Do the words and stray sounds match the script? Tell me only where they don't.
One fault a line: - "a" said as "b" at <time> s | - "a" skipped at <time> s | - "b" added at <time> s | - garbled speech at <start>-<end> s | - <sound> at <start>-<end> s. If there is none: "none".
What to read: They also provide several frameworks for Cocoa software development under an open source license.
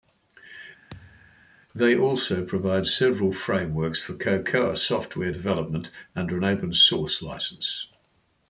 - thud at 0.9-1.5 s